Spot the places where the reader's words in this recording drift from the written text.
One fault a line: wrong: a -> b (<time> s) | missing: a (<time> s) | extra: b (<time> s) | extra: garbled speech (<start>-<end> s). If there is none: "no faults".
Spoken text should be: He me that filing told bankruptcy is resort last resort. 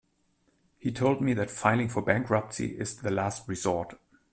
extra: told (0.9 s)
wrong: told -> for (1.9 s)
wrong: resort -> the (2.9 s)